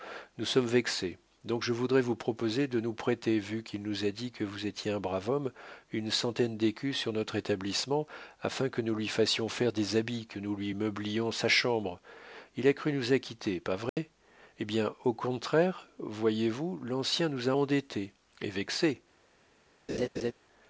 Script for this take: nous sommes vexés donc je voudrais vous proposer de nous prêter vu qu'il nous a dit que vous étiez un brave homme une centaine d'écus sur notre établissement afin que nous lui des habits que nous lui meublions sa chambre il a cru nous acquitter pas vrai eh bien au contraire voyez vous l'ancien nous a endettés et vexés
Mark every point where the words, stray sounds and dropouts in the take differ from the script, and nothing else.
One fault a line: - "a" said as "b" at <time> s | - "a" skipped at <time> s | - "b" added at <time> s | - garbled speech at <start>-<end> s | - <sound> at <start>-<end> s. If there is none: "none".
- "fassions faire" added at 9.1 s
- dropout at 13.9-14.0 s
- laugh at 19.9-20.3 s